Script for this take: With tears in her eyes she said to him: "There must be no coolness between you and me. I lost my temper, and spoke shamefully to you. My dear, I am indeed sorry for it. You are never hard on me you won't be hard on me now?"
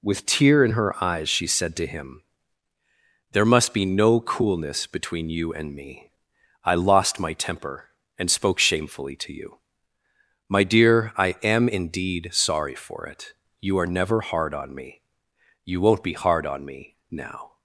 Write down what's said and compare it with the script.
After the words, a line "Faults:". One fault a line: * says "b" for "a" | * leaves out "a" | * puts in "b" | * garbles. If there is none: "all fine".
With tear in her eyes she said to him: "There must be no coolness between you and me. I lost my temper, and spoke shamefully to you. My dear, I am indeed sorry for it. You are never hard on me you won't be hard on me now?"
Faults:
* says "tear" for "tears"